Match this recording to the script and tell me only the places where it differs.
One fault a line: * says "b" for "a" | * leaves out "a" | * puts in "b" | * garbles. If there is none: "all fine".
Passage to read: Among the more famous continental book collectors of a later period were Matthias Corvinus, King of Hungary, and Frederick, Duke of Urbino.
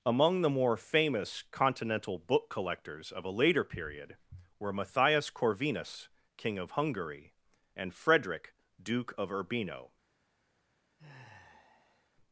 all fine